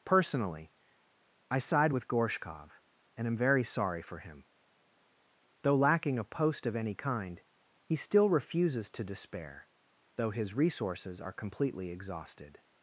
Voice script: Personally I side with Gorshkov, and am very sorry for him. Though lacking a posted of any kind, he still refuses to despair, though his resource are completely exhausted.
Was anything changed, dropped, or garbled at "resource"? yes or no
yes